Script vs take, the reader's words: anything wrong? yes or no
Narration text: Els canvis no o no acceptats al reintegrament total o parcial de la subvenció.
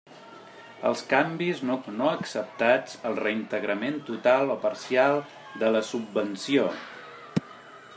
no